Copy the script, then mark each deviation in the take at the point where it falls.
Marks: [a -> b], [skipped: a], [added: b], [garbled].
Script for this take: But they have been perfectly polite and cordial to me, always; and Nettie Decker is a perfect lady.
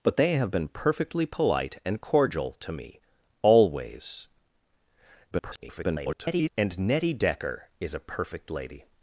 But they have been perfectly polite and cordial to me, always; [garbled] and Nettie Decker is a perfect lady.